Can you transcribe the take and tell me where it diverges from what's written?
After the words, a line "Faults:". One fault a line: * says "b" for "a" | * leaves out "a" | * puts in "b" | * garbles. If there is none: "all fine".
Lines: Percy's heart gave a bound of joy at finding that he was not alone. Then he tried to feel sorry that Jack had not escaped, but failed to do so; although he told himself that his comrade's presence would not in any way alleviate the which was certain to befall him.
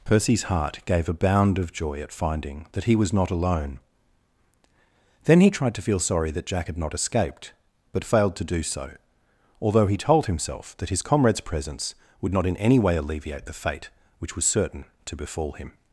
Percy's heart gave a bound of joy at finding that he was not alone. Then he tried to feel sorry that Jack had not escaped, but failed to do so; although he told himself that his comrade's presence would not in any way alleviate the fate which was certain to befall him.
Faults:
* puts in "fate"